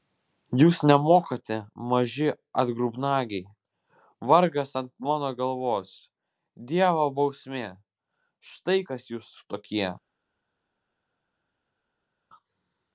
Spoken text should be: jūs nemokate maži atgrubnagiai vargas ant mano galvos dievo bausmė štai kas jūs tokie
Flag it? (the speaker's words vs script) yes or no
no